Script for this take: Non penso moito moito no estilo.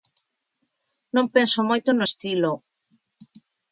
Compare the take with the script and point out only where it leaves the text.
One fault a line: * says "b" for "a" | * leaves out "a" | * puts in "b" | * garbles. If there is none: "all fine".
* leaves out "moito"